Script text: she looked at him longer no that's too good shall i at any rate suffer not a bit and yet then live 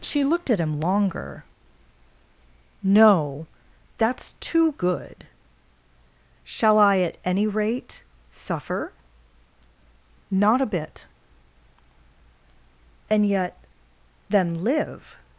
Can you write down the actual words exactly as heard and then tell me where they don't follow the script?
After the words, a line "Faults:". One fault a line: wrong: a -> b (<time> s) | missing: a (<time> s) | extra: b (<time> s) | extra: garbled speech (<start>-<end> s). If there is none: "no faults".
she looked at him longer no that's too good shall i at any rate suffer not a bit and yet then live
Faults:
no faults